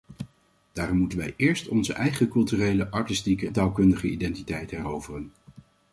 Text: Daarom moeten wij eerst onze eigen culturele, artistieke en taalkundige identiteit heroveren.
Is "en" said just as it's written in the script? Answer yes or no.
no